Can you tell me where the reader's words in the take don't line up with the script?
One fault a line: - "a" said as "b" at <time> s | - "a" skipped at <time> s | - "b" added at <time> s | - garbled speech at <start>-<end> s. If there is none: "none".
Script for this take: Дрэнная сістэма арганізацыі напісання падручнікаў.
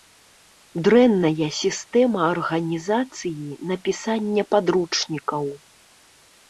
none